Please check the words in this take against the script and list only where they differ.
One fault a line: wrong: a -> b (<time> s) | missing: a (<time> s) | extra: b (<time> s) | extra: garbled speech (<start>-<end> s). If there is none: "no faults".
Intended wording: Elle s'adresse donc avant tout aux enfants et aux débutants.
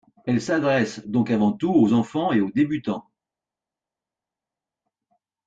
no faults